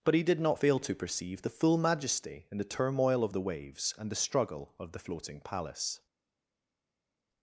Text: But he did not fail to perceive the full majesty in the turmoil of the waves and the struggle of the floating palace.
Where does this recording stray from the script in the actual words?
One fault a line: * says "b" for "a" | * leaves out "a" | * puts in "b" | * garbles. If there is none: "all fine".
all fine